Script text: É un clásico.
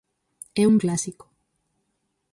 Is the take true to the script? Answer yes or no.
yes